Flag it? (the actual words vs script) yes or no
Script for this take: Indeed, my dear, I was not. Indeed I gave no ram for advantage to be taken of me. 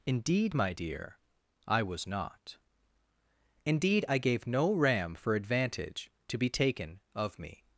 no